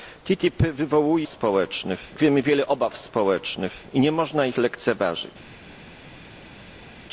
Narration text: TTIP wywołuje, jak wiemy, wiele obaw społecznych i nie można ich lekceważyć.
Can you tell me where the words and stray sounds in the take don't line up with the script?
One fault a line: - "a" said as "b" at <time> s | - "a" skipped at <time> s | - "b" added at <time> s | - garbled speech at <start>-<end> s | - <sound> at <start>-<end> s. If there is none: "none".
- "jak" said as "społecznych" at 1.3 s